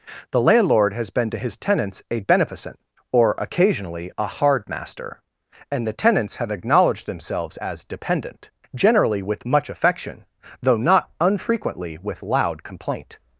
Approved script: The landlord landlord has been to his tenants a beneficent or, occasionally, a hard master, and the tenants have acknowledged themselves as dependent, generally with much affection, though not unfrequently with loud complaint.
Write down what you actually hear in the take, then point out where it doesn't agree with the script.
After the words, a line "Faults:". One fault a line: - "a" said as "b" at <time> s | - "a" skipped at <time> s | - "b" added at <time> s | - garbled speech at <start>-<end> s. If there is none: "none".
The landlord has been to his tenants a beneficent or, occasionally, a hard master, and the tenants have acknowledged themselves as dependent, generally with much affection, though not unfrequently with loud complaint.
Faults:
- "landlord" skipped at 0.9 s